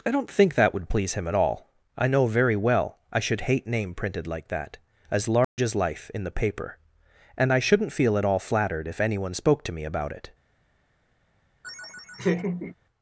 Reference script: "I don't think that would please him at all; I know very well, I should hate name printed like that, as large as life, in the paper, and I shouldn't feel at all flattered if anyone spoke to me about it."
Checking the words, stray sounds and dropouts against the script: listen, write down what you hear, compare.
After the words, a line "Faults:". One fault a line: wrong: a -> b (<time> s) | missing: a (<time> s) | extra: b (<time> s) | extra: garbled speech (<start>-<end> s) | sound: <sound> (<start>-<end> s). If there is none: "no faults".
"I don't think that would please him at all; I know very well, I should hate name printed like that, as large as life, in the paper, and I shouldn't feel at all flattered if anyone spoke to me about it."
Faults:
sound: dropout (5.4-5.6 s)
sound: laugh (11.6-12.8 s)